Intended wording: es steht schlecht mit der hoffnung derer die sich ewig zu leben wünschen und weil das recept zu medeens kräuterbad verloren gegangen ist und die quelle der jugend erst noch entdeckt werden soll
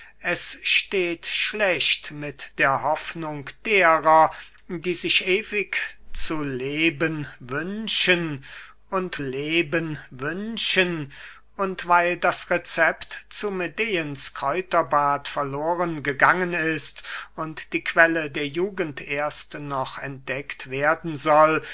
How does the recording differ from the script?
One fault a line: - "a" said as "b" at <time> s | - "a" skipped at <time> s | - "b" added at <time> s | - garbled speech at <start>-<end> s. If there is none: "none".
- "leben wünschen und" added at 9.2 s